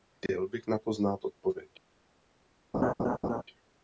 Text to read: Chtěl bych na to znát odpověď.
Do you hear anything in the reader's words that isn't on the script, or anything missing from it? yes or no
no